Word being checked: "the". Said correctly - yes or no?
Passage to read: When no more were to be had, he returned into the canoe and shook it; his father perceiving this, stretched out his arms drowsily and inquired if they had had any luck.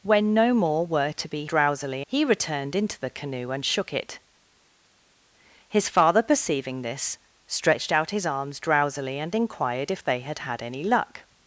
yes